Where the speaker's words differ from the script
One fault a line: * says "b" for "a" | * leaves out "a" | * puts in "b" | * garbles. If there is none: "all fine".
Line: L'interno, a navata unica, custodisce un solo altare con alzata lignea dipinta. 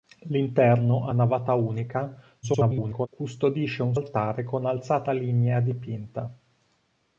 * garbles
* leaves out "solo"